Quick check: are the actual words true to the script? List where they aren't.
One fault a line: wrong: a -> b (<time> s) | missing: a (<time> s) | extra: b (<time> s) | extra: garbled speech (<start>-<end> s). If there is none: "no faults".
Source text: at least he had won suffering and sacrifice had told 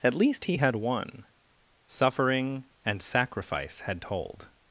no faults